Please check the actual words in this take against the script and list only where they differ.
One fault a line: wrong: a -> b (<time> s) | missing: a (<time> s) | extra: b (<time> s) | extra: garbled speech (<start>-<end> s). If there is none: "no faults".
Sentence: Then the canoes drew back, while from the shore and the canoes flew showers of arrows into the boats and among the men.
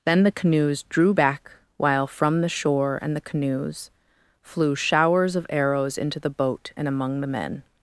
wrong: boats -> boat (6.3 s)